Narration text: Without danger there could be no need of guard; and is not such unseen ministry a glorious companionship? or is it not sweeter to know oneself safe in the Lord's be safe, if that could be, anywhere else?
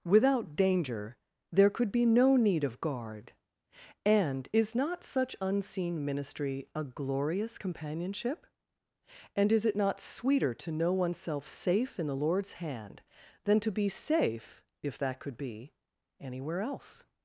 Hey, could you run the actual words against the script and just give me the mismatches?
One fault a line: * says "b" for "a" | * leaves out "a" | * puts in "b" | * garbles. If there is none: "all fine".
* says "and" for "or"
* puts in "hand than to"